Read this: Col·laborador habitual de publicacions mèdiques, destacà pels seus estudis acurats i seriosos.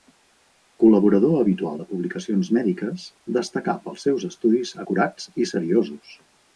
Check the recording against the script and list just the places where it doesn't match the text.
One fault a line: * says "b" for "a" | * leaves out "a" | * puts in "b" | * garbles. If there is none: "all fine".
all fine